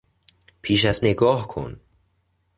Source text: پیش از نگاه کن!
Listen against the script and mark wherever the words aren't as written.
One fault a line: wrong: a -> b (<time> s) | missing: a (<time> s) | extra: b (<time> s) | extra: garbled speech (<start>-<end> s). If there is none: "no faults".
no faults